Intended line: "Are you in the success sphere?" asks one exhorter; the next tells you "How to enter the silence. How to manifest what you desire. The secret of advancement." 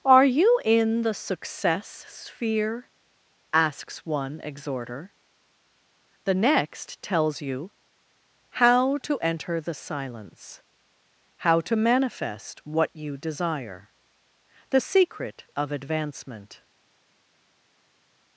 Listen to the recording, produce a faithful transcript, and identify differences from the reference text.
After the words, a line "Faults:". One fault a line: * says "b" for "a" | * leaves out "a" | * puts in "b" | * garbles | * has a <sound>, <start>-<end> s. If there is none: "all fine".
"Are you in the success sphere?" asks one exhorter; the next tells you "How to enter the silence. How to manifest what you desire. The secret of advancement."
Faults:
all fine